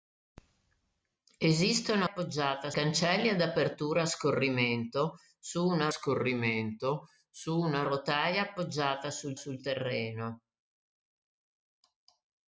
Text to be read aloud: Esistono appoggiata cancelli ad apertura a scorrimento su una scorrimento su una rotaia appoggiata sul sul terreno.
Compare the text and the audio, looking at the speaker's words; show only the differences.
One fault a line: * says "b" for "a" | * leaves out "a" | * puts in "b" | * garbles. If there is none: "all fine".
all fine